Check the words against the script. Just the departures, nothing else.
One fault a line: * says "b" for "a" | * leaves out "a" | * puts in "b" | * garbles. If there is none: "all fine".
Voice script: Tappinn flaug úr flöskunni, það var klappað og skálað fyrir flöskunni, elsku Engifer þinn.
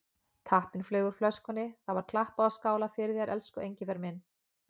* says "þér" for "flöskunni"
* says "minn" for "þinn"